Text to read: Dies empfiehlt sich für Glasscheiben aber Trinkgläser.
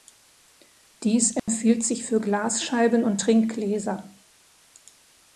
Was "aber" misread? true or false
true